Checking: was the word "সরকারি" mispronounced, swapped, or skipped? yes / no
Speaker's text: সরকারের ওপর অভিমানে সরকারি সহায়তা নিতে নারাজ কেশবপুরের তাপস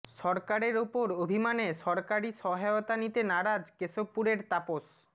no